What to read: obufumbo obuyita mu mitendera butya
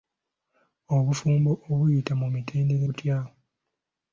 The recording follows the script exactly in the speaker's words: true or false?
true